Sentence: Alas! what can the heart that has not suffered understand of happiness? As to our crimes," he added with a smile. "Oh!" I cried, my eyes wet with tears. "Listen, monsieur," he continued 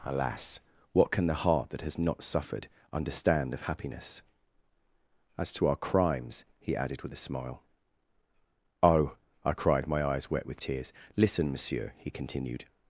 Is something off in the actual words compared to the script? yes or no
no